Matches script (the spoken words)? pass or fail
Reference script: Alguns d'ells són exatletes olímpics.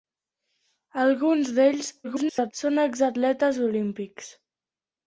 fail